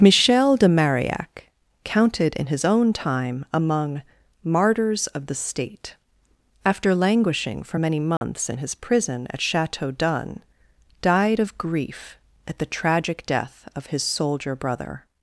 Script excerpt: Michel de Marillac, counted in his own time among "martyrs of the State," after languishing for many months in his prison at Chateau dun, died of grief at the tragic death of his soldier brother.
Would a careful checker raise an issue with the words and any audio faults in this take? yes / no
yes